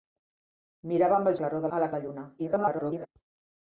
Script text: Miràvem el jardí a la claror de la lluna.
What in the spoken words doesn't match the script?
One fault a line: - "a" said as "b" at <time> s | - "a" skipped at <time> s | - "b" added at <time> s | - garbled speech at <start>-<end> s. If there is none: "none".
- "jardí" said as "claror" at 1.4 s
- "claror" skipped at 1.9 s
- garbled speech at 2.4-3.1 s